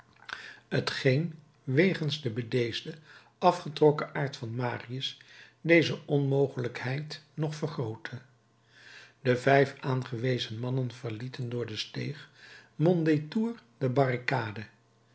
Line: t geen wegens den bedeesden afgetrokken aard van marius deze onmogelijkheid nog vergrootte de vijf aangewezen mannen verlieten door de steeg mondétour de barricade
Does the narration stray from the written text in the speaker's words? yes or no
no